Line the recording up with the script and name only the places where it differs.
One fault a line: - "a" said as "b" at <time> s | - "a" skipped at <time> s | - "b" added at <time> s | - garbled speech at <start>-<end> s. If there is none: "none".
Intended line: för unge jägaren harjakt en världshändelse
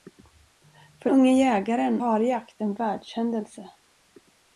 none